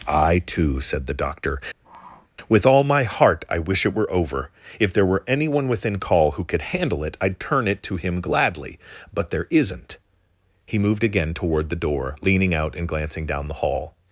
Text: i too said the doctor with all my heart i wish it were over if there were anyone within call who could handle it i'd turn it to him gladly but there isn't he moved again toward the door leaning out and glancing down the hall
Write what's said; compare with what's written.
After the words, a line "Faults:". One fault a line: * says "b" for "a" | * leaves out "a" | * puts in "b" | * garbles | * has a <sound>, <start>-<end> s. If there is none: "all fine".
i too said the doctor with all my heart i wish it were over if there were anyone within call who could handle it i'd turn it to him gladly but there isn't he moved again toward the door leaning out and glancing down the hall
Faults:
* has a sniff, 1.8-2.3 s